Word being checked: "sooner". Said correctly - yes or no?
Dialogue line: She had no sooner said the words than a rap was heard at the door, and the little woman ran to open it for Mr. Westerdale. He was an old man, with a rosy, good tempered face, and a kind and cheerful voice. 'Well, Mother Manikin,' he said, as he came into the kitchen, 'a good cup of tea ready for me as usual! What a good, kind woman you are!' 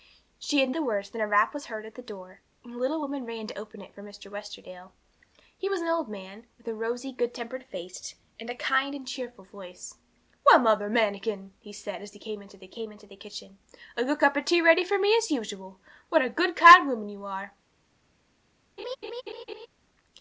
no